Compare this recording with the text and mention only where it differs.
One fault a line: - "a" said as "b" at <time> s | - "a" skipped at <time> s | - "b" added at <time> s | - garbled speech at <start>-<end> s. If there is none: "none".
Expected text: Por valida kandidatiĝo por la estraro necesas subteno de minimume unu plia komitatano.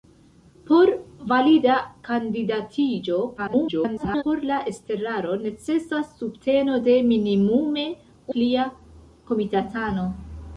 - garbled speech at 3.4-4.2 s
- "unu" skipped at 7.9 s